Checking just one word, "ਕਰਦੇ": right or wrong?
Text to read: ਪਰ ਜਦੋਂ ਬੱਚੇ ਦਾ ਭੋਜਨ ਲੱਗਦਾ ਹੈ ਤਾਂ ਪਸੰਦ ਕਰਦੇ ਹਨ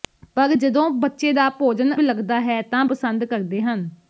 right